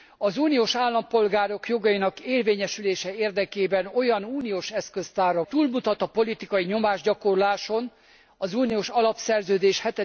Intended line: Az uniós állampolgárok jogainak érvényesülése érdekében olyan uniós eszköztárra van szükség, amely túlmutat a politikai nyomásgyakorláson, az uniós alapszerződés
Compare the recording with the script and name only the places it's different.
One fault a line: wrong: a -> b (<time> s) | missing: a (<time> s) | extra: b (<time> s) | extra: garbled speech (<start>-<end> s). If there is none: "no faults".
missing: van szükség amely (5.4 s)